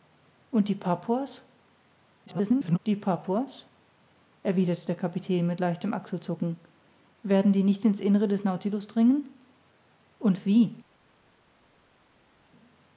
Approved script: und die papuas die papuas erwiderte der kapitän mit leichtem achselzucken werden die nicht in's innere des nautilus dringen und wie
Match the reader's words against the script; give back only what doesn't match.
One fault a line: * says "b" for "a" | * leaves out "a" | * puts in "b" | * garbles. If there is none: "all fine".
* garbles